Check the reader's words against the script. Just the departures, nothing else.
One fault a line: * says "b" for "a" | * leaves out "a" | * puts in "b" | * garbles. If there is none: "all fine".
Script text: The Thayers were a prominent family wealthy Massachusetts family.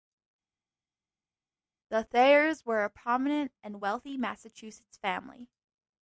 * says "and" for "family"